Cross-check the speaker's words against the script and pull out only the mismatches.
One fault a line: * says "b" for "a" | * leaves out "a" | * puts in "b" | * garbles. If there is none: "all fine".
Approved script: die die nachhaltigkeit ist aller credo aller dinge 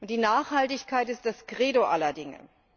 * leaves out "die"
* says "das" for "aller"